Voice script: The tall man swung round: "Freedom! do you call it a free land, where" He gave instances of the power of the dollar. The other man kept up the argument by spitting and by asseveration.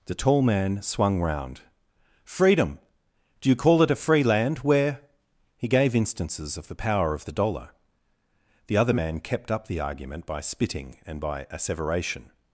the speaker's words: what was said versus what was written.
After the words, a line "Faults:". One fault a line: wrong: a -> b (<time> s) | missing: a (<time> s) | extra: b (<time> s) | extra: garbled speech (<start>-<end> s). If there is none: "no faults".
The tall man swung round: "Freedom! do you call it a free land, where" He gave instances of the power of the dollar. The other man kept up the argument by spitting and by asseveration.
Faults:
no faults